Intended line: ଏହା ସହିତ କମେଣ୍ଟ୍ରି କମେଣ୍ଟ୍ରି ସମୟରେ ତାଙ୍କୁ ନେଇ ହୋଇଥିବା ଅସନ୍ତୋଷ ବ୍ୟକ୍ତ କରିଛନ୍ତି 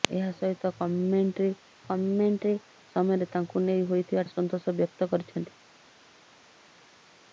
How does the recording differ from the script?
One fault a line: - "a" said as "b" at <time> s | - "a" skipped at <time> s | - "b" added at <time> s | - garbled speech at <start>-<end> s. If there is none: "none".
none